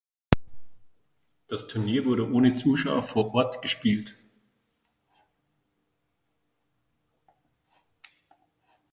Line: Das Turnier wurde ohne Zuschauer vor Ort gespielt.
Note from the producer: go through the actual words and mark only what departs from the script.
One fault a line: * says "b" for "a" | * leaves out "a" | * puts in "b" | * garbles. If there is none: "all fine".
all fine